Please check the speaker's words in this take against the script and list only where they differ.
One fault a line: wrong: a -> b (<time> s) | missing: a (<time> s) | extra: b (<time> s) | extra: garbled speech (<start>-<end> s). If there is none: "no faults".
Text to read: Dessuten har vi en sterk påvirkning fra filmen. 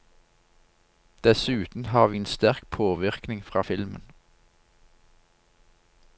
no faults